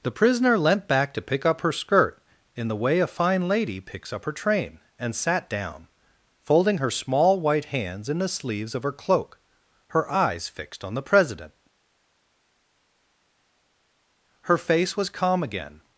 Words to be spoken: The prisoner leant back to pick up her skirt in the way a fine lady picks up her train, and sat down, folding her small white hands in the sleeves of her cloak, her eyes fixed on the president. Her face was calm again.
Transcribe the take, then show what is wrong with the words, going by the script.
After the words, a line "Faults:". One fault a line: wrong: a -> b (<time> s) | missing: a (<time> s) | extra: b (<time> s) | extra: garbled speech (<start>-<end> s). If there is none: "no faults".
The prisoner leant back to pick up her skirt in the way a fine lady picks up her train, and sat down, folding her small white hands in the sleeves of her cloak, her eyes fixed on the president. Her face was calm again.
Faults:
no faults